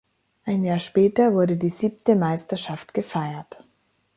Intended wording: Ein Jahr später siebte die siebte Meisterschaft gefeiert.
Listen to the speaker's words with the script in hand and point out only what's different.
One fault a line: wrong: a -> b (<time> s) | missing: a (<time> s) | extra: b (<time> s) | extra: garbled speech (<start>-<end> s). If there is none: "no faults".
wrong: siebte -> wurde (1.3 s)